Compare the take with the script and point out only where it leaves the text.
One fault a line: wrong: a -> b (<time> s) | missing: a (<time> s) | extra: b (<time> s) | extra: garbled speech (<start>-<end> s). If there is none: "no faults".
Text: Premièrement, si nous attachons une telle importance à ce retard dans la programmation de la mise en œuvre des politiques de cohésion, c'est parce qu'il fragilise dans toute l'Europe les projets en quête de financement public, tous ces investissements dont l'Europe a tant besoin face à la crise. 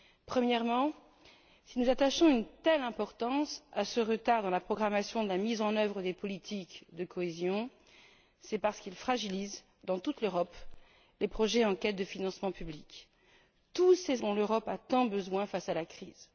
missing: investissements (14.2 s)